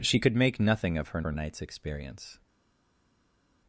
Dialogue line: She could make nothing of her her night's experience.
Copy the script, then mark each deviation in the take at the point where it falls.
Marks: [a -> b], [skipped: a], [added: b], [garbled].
She could make nothing of her her night's experience.